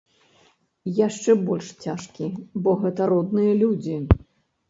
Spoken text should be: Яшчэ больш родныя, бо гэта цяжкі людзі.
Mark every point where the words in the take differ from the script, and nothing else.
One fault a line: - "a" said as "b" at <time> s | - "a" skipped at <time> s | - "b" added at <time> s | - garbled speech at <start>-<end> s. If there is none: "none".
- "родныя" said as "цяжкі" at 1.9 s
- "цяжкі" said as "родныя" at 3.1 s